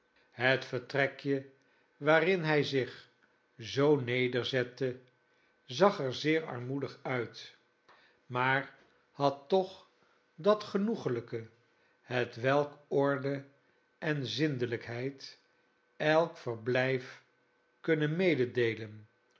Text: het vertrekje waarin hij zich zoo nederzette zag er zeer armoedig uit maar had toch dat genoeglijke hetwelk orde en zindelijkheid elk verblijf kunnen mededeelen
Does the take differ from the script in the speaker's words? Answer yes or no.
no